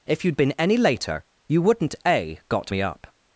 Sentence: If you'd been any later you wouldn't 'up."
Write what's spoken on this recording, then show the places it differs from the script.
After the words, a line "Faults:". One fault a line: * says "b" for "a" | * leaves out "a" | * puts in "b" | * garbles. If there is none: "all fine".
If you'd been any later you wouldn't 'a got me up."
Faults:
* puts in "a got me"